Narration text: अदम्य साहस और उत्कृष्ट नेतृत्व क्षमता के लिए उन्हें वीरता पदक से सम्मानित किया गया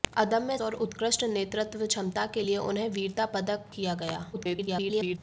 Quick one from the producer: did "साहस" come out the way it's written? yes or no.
no